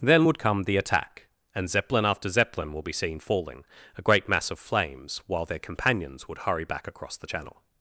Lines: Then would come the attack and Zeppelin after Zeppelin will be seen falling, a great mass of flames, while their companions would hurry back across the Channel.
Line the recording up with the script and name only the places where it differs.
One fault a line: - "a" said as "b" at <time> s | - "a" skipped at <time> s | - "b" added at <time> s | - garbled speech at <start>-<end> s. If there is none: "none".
none